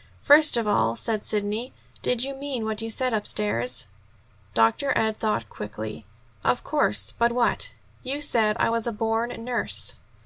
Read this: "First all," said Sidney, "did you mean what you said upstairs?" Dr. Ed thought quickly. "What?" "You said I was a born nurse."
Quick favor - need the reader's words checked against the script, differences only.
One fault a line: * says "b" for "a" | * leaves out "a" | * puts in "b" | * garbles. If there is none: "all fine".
* puts in "of"
* puts in "Of course but"